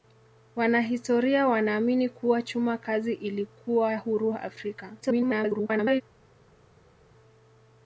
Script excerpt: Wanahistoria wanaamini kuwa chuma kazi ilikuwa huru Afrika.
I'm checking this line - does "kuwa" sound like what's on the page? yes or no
yes